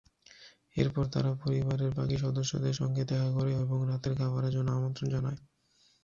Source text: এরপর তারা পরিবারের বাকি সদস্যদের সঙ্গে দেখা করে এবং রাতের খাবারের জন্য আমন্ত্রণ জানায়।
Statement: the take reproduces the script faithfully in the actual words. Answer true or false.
true